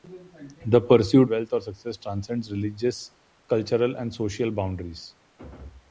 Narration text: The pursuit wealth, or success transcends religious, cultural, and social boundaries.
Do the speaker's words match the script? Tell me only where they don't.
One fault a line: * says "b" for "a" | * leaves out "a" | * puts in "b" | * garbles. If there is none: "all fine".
all fine